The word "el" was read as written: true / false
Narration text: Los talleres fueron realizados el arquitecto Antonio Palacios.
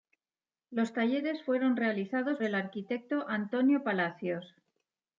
true